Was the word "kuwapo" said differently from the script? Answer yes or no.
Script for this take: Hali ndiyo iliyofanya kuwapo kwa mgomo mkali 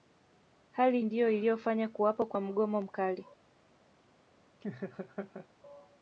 no